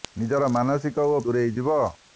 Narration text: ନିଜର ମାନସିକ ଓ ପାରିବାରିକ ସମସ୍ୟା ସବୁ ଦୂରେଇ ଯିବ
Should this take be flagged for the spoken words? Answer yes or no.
yes